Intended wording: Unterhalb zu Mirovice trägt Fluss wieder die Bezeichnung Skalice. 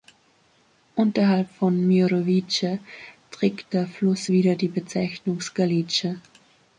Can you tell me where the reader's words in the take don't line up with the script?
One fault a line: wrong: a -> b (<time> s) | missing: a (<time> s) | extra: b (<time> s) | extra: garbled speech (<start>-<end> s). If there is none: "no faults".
wrong: zu -> von (1.6 s)
extra: der (3.7 s)